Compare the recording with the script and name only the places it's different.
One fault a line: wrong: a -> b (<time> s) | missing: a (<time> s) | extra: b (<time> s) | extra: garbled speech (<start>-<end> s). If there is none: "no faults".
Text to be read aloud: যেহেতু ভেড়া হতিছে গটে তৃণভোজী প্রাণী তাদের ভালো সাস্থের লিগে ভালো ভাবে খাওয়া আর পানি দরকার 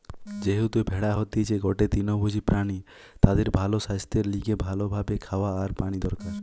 no faults